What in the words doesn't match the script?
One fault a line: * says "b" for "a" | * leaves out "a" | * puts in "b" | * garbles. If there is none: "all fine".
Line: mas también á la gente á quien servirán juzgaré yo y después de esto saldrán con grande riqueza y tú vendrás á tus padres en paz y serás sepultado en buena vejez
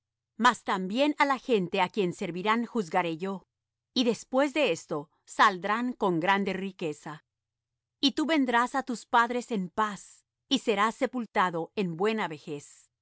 all fine